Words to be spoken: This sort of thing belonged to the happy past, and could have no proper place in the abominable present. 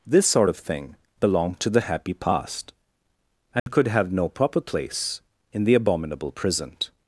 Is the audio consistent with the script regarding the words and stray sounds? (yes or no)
no